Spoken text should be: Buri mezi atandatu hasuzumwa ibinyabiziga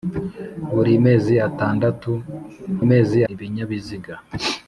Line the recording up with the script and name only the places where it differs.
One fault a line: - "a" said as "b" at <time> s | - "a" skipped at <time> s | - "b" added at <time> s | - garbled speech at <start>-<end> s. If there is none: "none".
- "hasuzumwa" said as "mezi" at 2.9 s